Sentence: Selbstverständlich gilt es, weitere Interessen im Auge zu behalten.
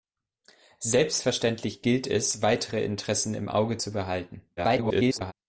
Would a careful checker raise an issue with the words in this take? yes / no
yes